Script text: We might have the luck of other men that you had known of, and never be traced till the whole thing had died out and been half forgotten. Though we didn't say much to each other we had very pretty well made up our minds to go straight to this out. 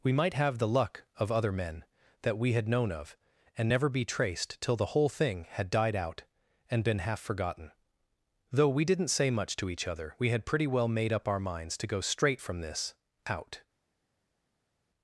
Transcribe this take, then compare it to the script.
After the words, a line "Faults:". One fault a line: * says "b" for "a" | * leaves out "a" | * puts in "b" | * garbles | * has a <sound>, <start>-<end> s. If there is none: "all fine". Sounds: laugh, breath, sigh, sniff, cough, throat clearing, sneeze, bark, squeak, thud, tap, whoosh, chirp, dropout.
We might have the luck of other men that we had known of, and never be traced till the whole thing had died out and been half forgotten. Though we didn't say much to each other we had pretty well made up our minds to go straight from this out.
Faults:
* says "we" for "you"
* leaves out "very"
* says "from" for "to"